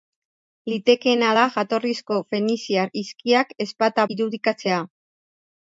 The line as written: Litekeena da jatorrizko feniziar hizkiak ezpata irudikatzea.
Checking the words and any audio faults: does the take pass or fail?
pass